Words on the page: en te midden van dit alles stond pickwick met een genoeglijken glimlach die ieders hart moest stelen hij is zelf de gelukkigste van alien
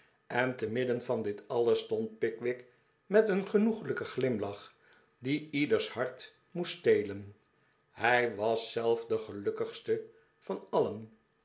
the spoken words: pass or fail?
fail